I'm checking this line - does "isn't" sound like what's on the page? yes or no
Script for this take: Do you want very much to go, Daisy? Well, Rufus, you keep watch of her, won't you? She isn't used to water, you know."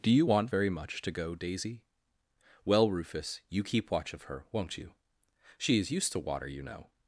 no